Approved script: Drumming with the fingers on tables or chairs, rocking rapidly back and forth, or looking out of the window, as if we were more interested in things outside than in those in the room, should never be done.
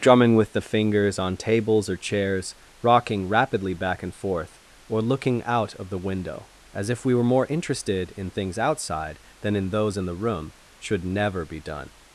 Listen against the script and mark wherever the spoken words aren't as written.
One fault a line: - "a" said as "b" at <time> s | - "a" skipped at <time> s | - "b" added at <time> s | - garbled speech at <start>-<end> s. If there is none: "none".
none